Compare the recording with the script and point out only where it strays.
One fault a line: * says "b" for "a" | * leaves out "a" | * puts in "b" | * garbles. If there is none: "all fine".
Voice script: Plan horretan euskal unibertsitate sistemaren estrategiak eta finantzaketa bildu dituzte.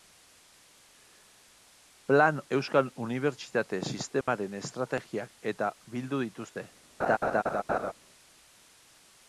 * leaves out "horretan"
* leaves out "finantzaketa"